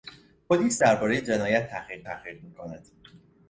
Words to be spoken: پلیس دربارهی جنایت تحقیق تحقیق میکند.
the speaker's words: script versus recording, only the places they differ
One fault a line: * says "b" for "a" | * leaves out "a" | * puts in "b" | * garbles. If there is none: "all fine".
all fine